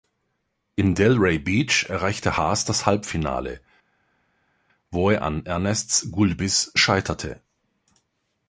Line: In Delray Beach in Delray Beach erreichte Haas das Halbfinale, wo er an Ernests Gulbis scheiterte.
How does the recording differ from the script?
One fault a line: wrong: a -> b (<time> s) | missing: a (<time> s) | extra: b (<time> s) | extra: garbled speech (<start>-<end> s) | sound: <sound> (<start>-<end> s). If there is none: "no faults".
missing: in Delray Beach (1.9 s)